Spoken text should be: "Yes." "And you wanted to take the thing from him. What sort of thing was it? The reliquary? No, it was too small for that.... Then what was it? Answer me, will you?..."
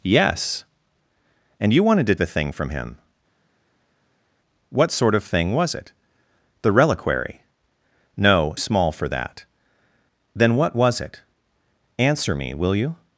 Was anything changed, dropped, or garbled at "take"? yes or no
yes